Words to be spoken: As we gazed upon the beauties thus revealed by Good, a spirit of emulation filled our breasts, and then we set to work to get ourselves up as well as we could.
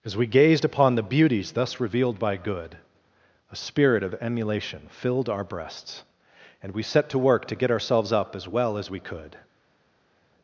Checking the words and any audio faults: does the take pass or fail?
fail